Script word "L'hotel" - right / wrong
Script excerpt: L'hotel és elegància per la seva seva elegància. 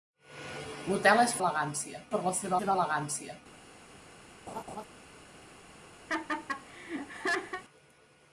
right